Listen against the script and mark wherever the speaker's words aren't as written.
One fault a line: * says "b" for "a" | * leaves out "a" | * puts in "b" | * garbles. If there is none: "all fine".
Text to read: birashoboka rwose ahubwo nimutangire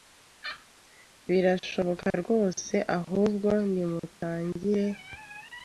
all fine